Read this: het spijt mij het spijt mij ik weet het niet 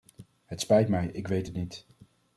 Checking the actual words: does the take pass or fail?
fail